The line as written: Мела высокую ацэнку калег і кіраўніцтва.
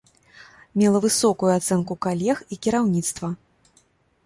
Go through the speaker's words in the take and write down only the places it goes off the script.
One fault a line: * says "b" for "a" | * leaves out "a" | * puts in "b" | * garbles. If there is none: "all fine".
all fine